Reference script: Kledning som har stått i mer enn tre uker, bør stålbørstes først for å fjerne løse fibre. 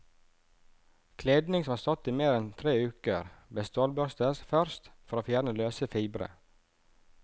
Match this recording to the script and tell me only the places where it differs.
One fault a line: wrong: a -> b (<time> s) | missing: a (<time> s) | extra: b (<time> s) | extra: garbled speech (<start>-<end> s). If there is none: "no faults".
no faults